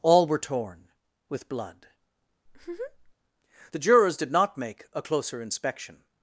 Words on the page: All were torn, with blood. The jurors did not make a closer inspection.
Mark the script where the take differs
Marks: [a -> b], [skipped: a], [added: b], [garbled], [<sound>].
All were torn, with blood. [laugh] The jurors did not make a closer inspection.